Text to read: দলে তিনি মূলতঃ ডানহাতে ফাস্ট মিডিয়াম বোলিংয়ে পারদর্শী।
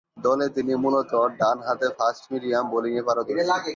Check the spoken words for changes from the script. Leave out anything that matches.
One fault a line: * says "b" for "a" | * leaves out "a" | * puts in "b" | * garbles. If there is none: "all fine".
all fine